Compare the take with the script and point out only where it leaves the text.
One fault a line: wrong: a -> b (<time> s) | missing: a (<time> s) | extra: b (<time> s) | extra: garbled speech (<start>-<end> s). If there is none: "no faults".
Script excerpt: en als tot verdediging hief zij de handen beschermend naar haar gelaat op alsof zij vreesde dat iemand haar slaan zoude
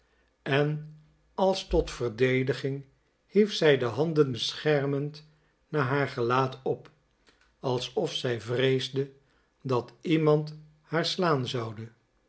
no faults